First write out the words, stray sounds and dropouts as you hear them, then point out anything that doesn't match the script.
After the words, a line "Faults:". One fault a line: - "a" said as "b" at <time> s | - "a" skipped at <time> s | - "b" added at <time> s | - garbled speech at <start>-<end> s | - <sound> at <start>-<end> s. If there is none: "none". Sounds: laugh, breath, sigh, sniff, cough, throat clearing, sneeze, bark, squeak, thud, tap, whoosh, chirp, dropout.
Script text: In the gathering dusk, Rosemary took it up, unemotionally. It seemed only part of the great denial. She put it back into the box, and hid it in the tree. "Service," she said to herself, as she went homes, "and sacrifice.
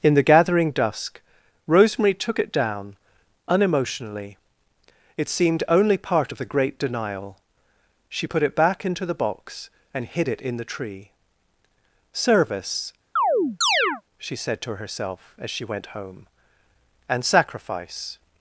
In the gathering dusk, Rosemary took it down, unemotionally. It seemed only part of the great denial. She put it back into the box, and hid it in the tree. "Service," she said to herself, as she went home, "and sacrifice.
Faults:
- "up" said as "down" at 2.5 s
- chirp at 13.2-14.0 s
- "homes" said as "home" at 15.9 s